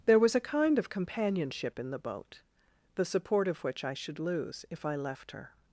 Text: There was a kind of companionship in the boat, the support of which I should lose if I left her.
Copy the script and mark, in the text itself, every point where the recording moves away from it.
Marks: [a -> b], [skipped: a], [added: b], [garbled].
There was a kind of companionship in the boat, the support of which I should lose if I left her.